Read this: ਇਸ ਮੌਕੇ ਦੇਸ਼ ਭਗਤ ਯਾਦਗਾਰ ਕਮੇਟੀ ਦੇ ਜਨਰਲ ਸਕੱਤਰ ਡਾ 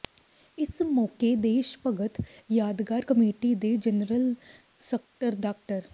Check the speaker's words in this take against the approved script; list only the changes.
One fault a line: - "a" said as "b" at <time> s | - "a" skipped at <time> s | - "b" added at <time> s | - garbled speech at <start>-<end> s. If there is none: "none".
none